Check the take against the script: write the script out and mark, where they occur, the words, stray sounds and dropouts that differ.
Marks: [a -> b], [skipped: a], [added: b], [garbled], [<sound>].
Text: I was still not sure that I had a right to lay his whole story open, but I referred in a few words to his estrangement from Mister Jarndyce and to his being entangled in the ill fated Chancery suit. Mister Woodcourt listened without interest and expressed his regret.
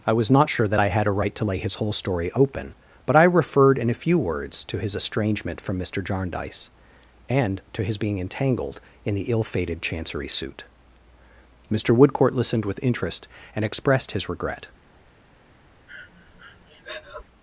I was [skipped: still] not sure that I had a right to lay his whole story open, but I referred in a few words to his estrangement from Mister Jarndyce and to his being entangled in the ill fated Chancery suit. Mister Woodcourt listened [without -> with] interest and expressed his regret. [breath]